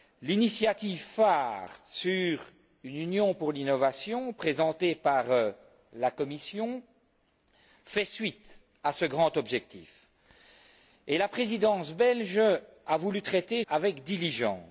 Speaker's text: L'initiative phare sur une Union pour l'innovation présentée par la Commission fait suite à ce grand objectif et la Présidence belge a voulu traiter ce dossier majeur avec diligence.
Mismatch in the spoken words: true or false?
true